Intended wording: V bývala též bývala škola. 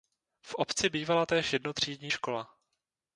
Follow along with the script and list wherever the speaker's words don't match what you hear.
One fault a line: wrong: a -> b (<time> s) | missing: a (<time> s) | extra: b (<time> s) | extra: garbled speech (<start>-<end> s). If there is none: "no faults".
extra: obci (0.6 s)
wrong: bývala -> jednotřídní (1.5 s)